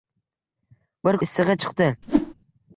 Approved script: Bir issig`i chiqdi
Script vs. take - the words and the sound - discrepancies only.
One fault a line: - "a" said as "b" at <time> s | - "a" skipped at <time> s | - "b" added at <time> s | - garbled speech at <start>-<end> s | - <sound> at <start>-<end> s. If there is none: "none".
- whoosh at 2.0-2.3 s